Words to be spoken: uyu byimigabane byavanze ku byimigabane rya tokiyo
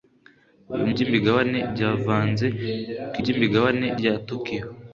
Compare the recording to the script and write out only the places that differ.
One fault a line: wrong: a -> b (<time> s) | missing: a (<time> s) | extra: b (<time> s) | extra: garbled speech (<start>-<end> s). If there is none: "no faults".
no faults